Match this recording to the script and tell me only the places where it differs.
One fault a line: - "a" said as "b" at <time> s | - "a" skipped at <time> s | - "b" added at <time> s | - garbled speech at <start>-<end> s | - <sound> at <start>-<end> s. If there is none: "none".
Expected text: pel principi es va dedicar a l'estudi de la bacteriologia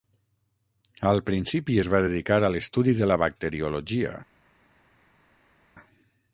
- "pel" said as "al" at 1.1 s